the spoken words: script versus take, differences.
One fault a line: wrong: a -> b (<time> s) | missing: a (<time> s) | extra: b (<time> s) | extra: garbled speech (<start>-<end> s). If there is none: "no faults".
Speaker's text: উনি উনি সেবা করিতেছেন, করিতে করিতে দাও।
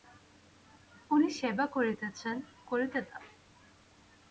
missing: উনি (1.3 s)
missing: করিতে (3.0 s)